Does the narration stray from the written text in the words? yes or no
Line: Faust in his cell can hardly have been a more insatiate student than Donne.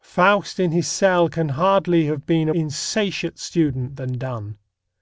yes